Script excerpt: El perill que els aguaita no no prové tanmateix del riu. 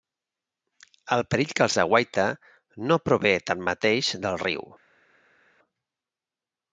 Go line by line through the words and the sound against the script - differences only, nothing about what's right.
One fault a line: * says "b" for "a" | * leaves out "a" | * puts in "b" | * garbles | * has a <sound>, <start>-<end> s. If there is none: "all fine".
* leaves out "no"